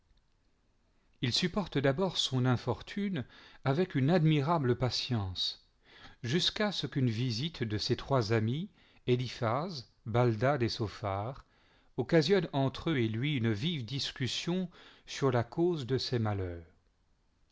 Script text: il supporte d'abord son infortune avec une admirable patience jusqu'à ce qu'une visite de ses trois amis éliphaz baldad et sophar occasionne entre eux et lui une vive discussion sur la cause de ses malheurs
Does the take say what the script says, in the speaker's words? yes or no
yes